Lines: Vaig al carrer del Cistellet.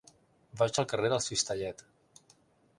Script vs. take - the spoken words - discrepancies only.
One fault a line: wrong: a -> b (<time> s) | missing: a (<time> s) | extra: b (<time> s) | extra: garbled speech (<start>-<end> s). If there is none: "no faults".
no faults